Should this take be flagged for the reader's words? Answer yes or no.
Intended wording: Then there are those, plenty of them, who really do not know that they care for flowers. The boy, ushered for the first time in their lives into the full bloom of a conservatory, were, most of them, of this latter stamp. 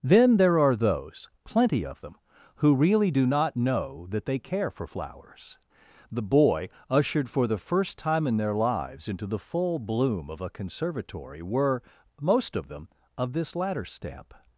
no